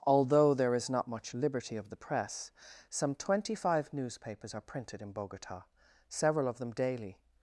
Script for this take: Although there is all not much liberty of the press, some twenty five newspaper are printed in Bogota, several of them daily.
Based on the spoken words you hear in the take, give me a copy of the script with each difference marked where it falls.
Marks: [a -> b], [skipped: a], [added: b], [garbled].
Although there is [skipped: all] not much liberty of the press, some twenty five [newspaper -> newspapers] are printed in Bogota, several of them daily.